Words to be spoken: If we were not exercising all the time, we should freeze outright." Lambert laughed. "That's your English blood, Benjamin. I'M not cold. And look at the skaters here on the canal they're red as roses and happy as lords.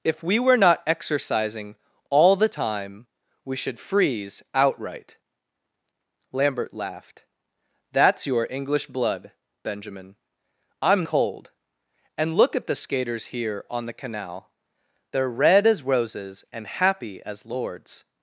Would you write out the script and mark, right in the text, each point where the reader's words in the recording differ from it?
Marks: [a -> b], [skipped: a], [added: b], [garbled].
If we were not exercising all the time, we should freeze outright." Lambert laughed. "That's your English blood, Benjamin. I'M [skipped: not] cold. And look at the skaters here on the canal they're red as roses and happy as lords.